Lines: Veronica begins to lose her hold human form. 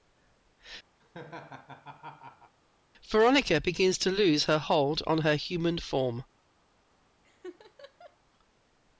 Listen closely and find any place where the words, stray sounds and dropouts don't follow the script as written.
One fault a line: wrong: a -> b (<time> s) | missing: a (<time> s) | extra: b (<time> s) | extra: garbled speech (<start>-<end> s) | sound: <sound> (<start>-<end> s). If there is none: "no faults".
sound: laugh (1.0-2.6 s)
extra: on her (5.0 s)
sound: laugh (7.2-8.2 s)